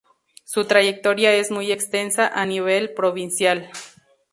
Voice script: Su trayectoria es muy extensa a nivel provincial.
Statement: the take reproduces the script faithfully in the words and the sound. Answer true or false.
true